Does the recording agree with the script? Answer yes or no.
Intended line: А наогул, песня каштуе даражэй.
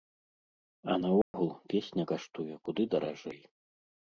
no